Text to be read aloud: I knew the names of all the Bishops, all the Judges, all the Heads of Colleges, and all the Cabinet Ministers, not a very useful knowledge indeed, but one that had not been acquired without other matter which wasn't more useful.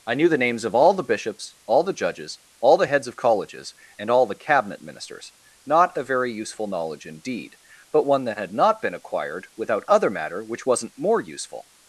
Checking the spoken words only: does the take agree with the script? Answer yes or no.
yes